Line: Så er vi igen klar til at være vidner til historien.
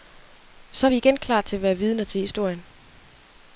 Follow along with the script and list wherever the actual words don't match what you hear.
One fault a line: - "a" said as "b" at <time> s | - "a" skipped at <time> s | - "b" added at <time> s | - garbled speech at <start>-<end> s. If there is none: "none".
none